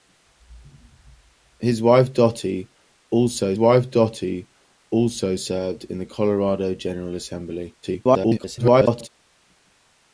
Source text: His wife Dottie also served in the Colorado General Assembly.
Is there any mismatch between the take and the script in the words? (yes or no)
yes